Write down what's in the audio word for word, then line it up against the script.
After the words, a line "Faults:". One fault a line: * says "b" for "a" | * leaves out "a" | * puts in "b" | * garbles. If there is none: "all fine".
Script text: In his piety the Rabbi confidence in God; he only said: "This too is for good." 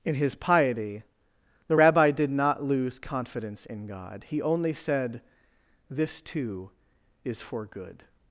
In his piety the Rabbi did not lose confidence in God; he only said: "This too is for good."
Faults:
* puts in "did not lose"